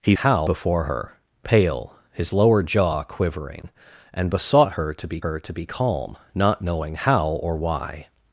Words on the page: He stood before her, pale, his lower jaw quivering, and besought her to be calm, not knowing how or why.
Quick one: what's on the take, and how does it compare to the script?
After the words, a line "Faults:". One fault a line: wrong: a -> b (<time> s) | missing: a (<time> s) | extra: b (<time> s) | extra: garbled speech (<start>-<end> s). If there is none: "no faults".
He how before her, pale, his lower jaw quivering, and besought her to be her to be calm, not knowing how or why.
Faults:
wrong: stood -> how (0.1 s)
extra: her to be (5.2 s)